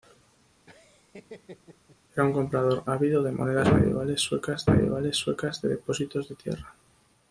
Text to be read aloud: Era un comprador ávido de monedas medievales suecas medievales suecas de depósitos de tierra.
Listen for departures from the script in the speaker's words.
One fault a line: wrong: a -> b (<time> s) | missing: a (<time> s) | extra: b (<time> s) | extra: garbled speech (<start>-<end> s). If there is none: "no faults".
no faults